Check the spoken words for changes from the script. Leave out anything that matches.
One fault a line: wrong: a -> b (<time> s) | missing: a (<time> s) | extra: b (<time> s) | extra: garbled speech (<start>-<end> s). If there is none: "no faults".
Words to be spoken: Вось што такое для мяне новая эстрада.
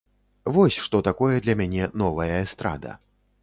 no faults